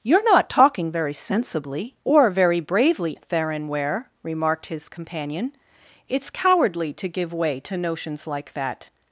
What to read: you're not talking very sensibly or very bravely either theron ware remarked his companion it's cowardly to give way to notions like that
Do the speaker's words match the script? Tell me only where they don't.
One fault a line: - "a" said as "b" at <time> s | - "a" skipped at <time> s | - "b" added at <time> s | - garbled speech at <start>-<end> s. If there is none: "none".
- "either" skipped at 3.2 s